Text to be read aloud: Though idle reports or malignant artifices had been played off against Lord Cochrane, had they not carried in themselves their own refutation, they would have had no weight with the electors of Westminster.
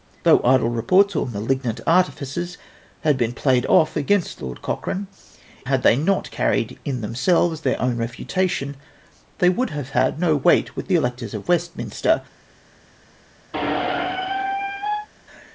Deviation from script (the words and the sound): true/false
true